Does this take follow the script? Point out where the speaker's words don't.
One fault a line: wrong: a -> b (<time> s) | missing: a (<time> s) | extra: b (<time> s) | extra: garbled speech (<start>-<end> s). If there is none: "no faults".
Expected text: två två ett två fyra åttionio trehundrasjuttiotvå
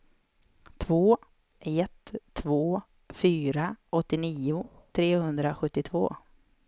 missing: två (1.2 s)